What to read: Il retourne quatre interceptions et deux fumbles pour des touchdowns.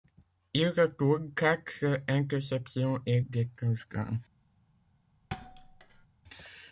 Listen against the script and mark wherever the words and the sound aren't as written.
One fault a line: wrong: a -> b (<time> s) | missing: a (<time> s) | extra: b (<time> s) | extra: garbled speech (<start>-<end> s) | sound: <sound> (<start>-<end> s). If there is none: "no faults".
missing: deux fumbles pour (3.2 s)
sound: thud (5.3-6.1 s)